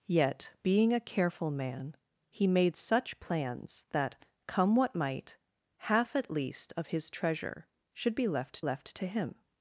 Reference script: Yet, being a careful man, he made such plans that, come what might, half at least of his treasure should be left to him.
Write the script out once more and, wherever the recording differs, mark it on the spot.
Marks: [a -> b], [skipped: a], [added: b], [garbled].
Yet, being a careful man, he made such plans that, come what might, half at least of his treasure should be left [added: left] to him.